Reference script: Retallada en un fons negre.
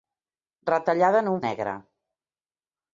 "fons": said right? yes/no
no